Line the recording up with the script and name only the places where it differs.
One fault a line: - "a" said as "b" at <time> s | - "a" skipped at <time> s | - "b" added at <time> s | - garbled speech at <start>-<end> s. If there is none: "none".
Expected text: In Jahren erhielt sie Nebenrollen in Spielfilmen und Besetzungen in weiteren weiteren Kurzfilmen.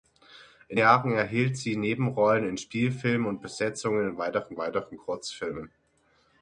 none